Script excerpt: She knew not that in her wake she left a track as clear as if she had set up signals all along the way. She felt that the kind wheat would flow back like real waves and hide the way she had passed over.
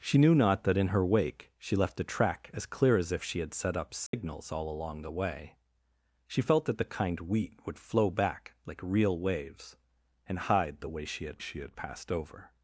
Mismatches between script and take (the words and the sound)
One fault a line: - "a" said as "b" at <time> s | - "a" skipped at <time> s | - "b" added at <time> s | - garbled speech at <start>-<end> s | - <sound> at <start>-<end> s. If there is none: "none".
- dropout at 4.1-4.1 s
- "she had" added at 11.4 s